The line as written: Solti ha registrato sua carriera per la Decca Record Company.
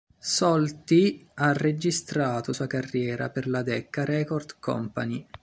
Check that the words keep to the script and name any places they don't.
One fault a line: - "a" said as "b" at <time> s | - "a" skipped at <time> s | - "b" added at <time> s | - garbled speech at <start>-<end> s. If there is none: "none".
none